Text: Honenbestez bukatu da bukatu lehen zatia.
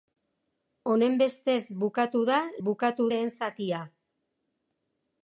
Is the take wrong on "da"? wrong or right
right